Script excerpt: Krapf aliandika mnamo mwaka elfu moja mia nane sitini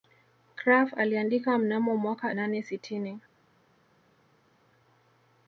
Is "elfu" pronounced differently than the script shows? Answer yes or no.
yes